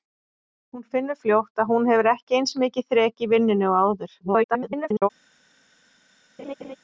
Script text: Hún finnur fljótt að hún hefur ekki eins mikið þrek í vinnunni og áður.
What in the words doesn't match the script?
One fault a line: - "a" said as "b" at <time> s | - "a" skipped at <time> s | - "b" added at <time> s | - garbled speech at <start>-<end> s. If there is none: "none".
- garbled speech at 4.2-5.1 s